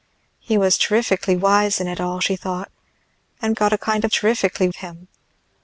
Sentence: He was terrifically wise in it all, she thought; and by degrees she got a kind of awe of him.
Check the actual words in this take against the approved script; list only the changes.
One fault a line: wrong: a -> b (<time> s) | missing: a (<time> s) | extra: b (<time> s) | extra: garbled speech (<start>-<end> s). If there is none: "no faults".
missing: by degrees she (3.6 s)
wrong: awe -> terrifically (4.1 s)